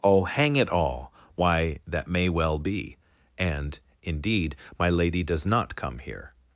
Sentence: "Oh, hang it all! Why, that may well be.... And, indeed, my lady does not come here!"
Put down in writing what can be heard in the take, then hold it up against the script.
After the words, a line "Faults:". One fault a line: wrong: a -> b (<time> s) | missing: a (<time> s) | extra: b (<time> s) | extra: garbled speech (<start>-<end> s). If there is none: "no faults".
"Oh, hang it all! Why, that may well be.... And, indeed, my lady does not come here!"
Faults:
no faults